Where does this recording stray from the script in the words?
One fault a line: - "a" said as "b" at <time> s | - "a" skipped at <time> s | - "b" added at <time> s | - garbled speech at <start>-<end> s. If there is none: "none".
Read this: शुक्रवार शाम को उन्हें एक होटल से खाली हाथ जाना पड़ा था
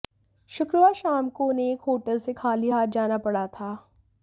none